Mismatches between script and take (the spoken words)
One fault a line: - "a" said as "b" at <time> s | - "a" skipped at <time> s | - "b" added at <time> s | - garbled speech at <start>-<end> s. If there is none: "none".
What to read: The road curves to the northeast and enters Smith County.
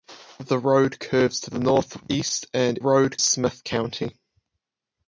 - "enters" said as "road" at 2.8 s